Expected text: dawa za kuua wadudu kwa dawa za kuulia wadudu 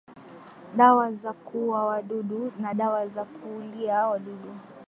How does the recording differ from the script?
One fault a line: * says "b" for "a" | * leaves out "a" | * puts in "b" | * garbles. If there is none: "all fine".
* says "na" for "kwa"